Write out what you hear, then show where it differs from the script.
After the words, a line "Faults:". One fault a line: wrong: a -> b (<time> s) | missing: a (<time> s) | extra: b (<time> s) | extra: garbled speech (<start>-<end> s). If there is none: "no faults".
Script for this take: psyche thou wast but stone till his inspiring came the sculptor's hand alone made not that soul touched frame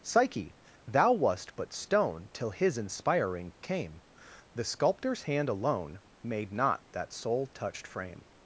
psyche thou wast but stone till his inspiring came the sculptor's hand alone made not that soul touched frame
Faults:
no faults